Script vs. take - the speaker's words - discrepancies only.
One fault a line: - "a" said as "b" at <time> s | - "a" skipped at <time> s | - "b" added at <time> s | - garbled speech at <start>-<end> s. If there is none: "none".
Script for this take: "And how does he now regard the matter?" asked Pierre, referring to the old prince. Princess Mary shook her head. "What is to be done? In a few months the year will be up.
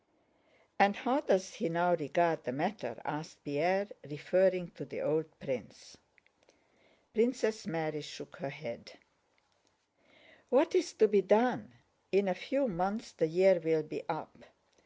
none